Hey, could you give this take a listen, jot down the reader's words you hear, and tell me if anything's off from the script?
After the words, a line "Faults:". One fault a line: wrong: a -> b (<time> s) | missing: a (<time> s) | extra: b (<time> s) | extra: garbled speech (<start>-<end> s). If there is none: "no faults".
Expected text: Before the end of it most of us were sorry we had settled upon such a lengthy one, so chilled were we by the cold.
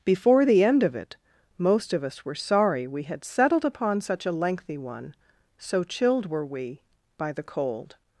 Before the end of it most of us were sorry we had settled upon such a lengthy one, so chilled were we by the cold.
Faults:
no faults